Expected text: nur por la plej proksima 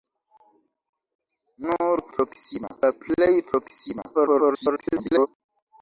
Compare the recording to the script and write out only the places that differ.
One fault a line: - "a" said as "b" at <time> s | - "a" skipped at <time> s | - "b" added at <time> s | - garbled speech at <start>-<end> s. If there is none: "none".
- "por" said as "proksima" at 2.2 s
- garbled speech at 4.1-5.3 s